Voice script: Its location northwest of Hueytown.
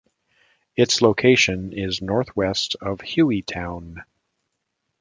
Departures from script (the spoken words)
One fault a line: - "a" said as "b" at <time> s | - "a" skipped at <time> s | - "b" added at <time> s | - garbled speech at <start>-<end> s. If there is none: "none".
- "is" added at 1.7 s